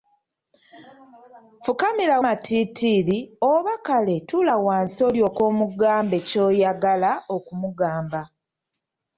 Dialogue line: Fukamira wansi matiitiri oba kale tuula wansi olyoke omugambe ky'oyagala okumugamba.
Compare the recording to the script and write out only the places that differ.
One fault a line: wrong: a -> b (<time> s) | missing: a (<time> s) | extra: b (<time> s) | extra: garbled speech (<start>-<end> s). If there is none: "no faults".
missing: wansi (2.2 s)